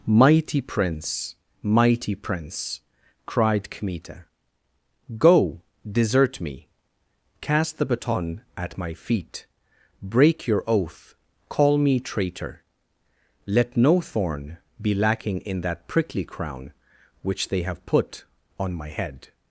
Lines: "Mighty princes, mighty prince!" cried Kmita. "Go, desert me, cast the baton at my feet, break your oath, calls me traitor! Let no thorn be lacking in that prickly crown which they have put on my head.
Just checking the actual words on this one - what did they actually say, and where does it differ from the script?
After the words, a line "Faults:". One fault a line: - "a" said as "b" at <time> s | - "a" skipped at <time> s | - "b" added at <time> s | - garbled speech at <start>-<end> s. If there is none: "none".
"Mighty prince, mighty prince!" cried Kmita. "Go, desert me, cast the baton at my feet, break your oath, call me traitor! Let no thorn be lacking in that prickly crown which they have put on my head.
Faults:
- "princes" said as "prince" at 0.6 s
- "calls" said as "call" at 11.5 s